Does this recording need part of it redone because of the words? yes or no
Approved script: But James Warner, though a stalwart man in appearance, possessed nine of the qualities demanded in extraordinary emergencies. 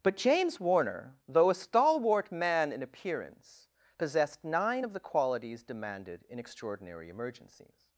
no